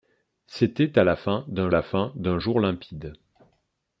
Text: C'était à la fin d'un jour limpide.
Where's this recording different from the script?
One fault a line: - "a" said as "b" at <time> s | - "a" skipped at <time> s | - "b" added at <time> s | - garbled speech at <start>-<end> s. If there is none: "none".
- "la fin d'un" added at 1.7 s